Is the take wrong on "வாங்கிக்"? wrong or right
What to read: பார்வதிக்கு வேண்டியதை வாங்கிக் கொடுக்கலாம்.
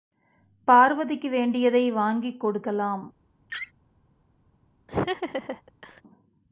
right